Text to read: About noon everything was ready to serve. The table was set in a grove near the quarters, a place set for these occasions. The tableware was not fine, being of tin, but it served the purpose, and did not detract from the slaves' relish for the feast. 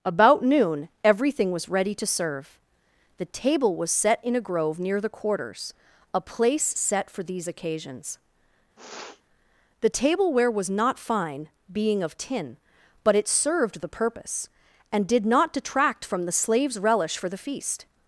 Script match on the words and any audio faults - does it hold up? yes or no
no